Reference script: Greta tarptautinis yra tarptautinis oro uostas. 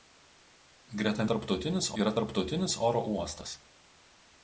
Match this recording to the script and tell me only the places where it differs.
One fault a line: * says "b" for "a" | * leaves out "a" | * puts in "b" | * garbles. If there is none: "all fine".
all fine